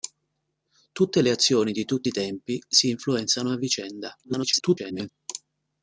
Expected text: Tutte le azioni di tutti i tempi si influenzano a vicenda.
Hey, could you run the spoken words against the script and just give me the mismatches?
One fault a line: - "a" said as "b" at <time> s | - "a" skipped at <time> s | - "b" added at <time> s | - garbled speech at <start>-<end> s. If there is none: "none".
- garbled speech at 4.2-5.1 s